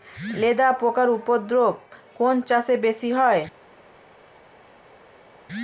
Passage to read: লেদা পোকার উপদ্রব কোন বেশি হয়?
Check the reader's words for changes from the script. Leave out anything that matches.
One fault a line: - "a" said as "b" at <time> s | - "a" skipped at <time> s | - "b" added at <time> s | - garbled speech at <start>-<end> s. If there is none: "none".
- "চাষে" added at 2.5 s